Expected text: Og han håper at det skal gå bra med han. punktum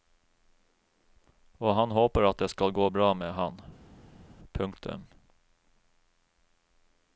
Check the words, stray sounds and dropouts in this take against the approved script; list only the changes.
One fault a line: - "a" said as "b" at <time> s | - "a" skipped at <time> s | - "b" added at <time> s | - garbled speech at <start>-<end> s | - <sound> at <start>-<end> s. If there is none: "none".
none